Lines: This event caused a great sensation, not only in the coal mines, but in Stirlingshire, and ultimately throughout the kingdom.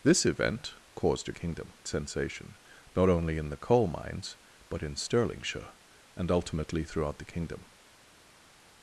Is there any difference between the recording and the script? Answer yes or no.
yes